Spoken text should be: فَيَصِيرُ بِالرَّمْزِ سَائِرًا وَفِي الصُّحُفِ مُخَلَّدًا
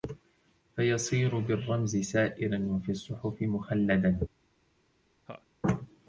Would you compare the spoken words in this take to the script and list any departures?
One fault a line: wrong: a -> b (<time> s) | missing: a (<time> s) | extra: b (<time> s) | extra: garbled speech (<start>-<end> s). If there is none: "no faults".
no faults